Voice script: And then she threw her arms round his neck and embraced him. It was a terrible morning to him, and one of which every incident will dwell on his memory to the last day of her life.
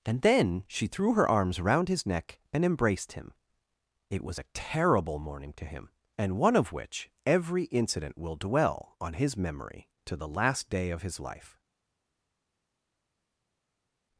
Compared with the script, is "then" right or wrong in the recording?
right